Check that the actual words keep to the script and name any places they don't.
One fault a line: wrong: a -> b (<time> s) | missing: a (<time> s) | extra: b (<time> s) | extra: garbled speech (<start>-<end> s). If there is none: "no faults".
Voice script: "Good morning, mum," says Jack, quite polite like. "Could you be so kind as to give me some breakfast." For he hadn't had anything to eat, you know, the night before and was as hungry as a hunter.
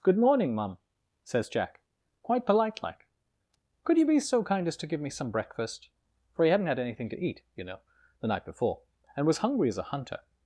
missing: as (9.4 s)